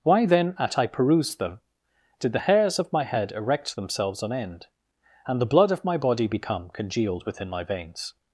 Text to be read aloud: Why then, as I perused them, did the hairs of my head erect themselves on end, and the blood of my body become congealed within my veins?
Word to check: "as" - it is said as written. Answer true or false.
false